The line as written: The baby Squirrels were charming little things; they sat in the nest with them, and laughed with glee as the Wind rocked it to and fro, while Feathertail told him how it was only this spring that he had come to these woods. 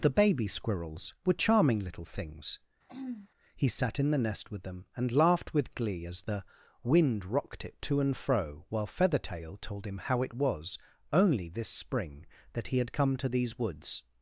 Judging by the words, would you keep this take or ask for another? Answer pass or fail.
fail